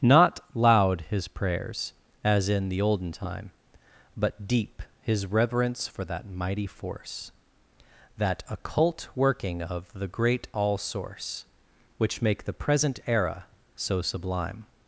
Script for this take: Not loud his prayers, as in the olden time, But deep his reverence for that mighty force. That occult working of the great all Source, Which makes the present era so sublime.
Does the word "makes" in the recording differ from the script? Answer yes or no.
yes